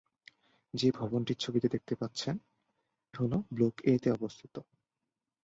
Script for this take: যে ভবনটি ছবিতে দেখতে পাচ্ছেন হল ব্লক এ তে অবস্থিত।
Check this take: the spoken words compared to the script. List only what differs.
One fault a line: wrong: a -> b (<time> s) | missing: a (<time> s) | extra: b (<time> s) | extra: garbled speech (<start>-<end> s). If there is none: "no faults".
no faults